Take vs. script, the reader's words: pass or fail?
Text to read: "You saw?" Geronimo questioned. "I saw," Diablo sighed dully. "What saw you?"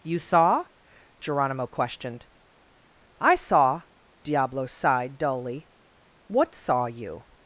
pass